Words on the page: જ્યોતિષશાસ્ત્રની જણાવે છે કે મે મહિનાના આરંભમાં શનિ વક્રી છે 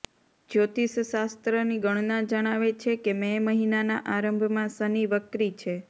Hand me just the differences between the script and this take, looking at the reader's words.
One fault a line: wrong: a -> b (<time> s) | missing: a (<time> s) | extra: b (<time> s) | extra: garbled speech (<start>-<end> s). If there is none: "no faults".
extra: ગણના (1.8 s)